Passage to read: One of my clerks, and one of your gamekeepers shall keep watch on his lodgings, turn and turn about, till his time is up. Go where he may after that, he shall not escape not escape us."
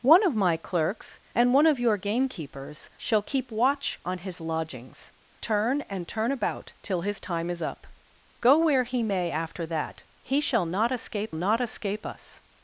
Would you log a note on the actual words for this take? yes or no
no